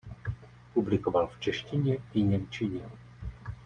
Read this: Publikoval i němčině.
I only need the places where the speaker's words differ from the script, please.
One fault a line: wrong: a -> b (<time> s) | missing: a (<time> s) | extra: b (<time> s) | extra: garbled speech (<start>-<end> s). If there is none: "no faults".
extra: v češtině (1.3 s)